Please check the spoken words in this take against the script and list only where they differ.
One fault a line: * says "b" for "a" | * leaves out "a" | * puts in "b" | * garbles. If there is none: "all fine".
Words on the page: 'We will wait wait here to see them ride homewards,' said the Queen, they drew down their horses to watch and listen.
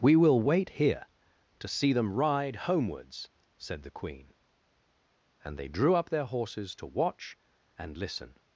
* leaves out "wait"
* puts in "and"
* says "up" for "down"